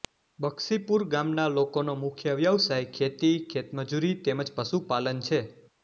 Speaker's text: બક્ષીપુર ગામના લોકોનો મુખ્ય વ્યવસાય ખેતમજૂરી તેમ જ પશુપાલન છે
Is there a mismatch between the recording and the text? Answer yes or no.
yes